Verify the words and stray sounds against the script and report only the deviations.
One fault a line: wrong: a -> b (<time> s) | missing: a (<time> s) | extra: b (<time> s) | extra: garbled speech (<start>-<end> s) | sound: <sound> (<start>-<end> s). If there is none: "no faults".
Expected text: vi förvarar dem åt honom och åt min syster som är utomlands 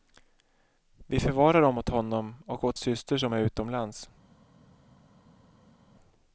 missing: min (2.8 s)